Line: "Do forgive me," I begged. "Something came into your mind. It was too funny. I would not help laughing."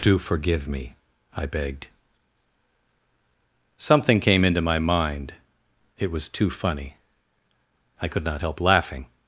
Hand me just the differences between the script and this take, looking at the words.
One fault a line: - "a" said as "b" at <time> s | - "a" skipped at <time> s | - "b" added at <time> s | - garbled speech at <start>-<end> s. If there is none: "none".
- "your" said as "my" at 4.6 s
- "would" said as "could" at 8.1 s